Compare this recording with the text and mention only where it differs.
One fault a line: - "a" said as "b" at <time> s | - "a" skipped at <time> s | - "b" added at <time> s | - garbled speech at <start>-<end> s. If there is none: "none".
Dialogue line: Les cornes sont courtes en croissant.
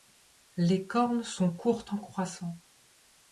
none